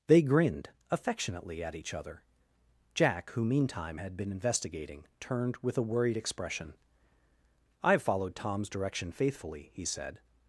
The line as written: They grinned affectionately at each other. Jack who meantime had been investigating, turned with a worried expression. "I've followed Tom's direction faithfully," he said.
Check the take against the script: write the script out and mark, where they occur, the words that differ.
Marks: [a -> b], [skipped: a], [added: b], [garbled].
They grinned affectionately at each other. Jack who meantime had been investigating, turned with a worried expression. "I've followed Tom's direction faithfully," he said.